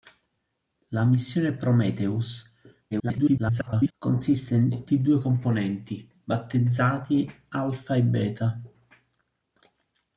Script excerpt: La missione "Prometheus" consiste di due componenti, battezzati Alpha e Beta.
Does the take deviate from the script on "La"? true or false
false